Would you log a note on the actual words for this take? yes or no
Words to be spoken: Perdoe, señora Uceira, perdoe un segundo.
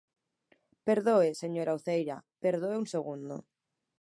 no